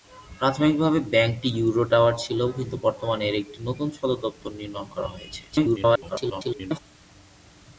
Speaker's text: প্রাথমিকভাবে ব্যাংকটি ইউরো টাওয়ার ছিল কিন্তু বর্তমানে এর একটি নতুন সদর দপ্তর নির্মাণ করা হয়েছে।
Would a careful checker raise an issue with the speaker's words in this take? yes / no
yes